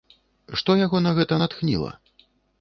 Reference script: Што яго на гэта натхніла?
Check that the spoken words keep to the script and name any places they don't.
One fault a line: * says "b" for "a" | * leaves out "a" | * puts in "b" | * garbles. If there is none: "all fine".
all fine